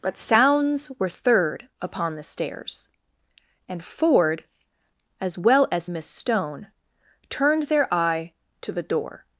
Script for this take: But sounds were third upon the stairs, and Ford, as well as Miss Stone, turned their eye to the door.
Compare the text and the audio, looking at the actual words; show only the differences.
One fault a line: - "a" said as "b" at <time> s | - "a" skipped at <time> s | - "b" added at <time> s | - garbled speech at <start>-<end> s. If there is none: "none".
none